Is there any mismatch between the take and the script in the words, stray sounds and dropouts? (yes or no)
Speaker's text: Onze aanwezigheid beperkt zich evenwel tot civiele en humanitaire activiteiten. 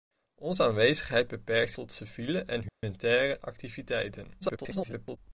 yes